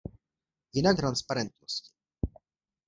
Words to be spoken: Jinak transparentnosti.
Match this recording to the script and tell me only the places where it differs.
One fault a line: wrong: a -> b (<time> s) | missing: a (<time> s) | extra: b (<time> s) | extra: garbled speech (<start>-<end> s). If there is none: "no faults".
no faults